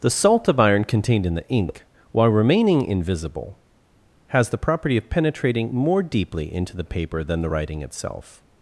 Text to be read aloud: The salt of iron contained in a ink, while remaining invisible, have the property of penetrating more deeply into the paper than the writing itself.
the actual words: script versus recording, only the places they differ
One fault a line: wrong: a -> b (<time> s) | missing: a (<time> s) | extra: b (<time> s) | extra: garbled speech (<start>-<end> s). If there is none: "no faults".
wrong: a -> the (1.4 s)
wrong: have -> has (4.3 s)